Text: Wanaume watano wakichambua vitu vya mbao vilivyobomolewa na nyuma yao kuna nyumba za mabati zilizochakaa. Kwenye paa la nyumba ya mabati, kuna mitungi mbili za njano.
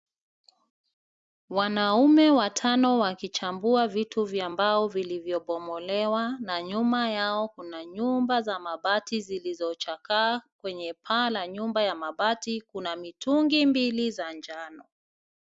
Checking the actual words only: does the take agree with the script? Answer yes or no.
yes